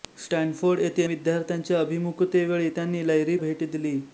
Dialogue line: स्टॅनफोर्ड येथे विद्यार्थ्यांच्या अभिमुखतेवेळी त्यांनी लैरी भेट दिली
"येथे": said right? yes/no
yes